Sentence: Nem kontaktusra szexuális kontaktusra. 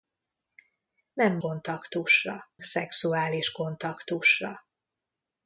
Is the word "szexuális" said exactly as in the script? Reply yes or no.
yes